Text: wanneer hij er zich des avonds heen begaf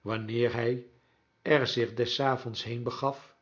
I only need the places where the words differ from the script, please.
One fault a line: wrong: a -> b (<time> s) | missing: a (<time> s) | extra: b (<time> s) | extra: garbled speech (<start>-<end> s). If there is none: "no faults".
no faults